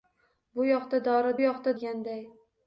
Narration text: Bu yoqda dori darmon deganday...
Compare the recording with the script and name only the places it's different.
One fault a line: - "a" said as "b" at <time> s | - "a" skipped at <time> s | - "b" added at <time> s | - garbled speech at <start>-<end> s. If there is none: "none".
- "darmon" said as "yoqda" at 1.4 s